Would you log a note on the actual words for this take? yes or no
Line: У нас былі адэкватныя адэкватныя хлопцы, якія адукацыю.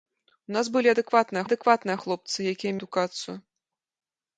no